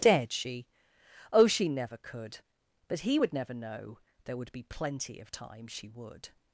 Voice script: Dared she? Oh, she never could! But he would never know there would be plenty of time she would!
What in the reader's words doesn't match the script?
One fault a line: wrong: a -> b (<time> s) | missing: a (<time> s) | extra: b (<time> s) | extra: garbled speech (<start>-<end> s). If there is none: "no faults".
no faults